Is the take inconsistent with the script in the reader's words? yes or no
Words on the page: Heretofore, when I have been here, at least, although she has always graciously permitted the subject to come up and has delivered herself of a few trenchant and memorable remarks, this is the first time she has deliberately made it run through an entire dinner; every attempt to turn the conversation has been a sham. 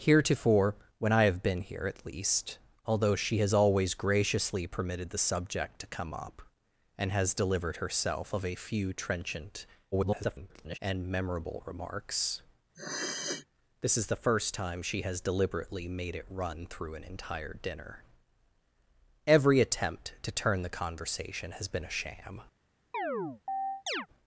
yes